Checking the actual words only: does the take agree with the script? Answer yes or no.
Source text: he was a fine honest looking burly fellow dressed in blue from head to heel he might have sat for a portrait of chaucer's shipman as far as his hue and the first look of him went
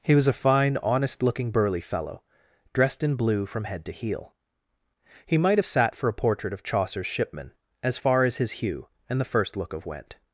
no